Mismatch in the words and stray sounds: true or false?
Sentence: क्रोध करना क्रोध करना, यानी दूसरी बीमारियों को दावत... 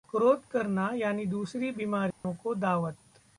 true